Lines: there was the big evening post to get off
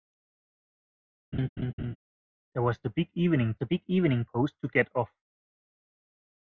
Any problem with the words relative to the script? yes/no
yes